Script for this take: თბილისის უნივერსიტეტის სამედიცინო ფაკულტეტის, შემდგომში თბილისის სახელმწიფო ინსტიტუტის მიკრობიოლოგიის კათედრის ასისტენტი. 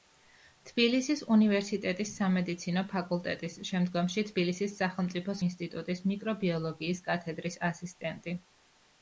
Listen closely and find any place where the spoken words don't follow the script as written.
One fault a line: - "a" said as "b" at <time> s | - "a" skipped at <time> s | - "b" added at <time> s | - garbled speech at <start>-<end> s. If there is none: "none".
none